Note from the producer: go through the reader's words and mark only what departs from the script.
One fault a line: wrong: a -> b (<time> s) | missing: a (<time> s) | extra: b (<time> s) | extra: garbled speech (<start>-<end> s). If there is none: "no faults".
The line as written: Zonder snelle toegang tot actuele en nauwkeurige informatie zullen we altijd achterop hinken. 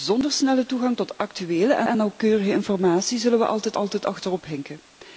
extra: en (1.8 s)
extra: altijd (3.7 s)